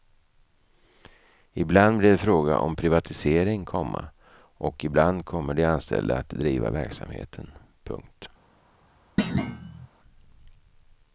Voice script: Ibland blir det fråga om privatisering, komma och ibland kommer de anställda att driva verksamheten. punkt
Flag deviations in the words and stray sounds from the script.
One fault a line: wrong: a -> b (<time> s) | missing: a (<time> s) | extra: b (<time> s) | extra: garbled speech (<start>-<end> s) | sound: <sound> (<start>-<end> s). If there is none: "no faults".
sound: thud (9.2-9.9 s)